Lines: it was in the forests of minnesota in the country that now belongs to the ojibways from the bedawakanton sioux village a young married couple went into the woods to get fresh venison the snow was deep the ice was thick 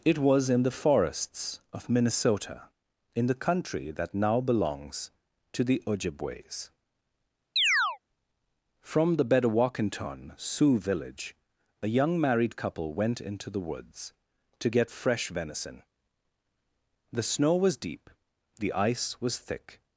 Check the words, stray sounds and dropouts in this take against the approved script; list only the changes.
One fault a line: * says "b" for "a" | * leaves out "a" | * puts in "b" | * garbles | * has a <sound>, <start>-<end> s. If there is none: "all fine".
* has a chirp, 7.6-8.0 s